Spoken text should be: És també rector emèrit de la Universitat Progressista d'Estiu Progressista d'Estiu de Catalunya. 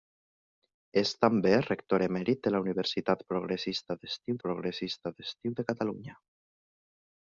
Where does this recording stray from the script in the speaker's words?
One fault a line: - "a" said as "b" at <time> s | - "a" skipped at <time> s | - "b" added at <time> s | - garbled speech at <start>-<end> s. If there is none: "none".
none